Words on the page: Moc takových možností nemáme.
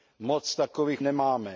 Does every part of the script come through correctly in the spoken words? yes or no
no